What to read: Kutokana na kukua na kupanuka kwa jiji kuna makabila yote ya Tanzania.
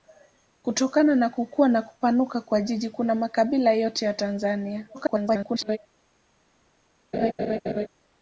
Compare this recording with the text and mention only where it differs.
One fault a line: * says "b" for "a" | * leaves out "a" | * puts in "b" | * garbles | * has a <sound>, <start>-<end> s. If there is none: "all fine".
* garbles
* has a laugh, 7.1-7.9 s